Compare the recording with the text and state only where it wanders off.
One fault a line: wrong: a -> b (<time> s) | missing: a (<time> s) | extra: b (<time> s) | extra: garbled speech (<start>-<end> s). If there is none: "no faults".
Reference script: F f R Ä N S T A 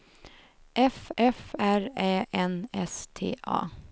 no faults